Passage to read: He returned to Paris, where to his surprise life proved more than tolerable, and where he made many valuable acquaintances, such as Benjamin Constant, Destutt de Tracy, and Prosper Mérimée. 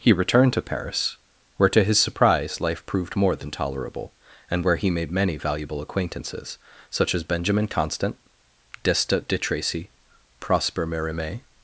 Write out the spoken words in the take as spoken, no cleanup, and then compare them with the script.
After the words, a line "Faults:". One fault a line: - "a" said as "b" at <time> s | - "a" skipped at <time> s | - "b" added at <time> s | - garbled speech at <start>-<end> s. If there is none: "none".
He returned to Paris, where to his surprise life proved more than tolerable, and where he made many valuable acquaintances, such as Benjamin Constant, Destutt de Tracy, Prosper Mérimée.
Faults:
- "and" skipped at 9.9 s